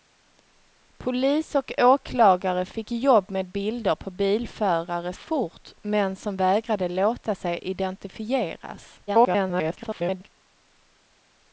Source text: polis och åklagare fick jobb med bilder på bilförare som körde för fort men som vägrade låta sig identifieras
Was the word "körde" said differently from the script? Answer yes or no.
yes